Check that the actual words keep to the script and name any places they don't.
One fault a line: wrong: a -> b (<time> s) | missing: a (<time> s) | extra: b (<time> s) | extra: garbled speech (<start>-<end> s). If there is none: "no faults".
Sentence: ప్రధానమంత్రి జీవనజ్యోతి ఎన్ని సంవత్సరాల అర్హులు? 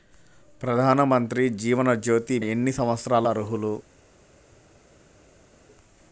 no faults